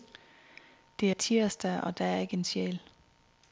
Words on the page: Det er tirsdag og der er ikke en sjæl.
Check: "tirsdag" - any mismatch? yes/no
no